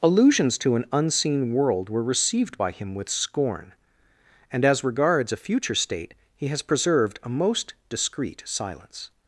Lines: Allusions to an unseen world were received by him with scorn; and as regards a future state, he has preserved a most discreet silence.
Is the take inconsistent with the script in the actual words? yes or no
no